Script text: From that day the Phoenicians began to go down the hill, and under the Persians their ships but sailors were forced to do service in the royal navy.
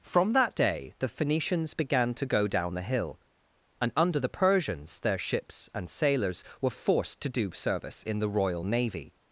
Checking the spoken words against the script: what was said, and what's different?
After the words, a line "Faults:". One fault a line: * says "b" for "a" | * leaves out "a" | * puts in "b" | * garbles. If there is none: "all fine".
From that day the Phoenicians began to go down the hill, and under the Persians their ships and sailors were forced to do service in the royal navy.
Faults:
* says "and" for "but"